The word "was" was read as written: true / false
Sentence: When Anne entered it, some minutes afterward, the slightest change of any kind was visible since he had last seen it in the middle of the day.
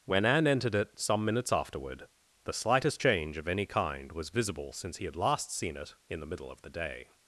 true